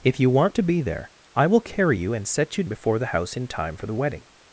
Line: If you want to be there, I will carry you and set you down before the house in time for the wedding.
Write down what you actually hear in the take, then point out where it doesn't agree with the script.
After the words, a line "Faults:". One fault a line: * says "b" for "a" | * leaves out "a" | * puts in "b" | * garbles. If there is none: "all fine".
If you want to be there, I will carry you and set you before the house in time for the wedding.
Faults:
* leaves out "down"